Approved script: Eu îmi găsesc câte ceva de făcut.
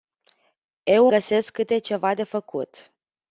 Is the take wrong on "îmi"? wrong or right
wrong